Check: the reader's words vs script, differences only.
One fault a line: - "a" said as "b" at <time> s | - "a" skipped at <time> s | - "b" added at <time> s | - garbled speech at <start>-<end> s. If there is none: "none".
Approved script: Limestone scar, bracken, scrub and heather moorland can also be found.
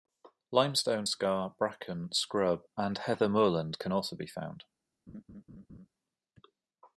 none